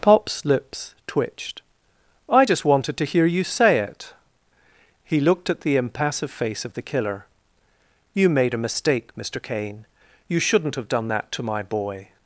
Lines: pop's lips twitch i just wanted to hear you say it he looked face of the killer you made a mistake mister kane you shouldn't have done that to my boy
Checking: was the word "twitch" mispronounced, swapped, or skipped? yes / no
yes